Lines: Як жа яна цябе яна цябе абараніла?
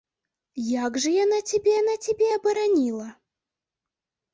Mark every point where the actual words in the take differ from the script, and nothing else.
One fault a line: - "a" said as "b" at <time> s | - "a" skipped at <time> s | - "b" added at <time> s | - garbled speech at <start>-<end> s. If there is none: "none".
none